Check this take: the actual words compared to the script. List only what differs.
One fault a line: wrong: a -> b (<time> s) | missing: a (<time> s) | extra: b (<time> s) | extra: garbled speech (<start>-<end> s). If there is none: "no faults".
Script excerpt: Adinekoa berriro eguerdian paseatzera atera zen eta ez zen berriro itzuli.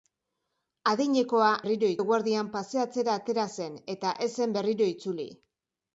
no faults